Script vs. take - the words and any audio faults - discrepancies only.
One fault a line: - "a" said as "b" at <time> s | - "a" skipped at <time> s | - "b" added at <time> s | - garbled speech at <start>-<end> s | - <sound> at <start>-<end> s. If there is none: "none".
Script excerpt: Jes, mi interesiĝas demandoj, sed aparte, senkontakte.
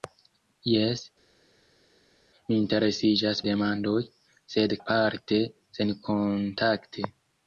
none